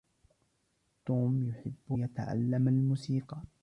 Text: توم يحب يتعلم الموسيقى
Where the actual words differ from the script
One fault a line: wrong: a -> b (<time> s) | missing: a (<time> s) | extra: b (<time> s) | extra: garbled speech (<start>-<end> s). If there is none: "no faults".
no faults